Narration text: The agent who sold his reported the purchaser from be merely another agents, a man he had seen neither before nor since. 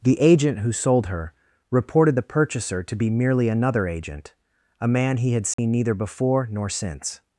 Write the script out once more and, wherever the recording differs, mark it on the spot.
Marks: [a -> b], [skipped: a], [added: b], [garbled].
The agent who sold [his -> her] reported the purchaser [from -> to] be merely another [agents, -> agent] a man he had seen neither before nor since.